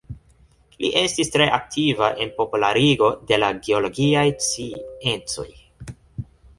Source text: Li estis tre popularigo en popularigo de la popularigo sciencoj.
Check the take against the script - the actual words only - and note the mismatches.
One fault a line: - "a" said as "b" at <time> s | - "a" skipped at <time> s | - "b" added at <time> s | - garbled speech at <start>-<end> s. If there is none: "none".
- "popularigo" said as "aktiva" at 1.6 s
- "popularigo" said as "geologiaj" at 3.7 s